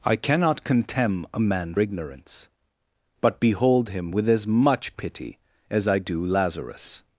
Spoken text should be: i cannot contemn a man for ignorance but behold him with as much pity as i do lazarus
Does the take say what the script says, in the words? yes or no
no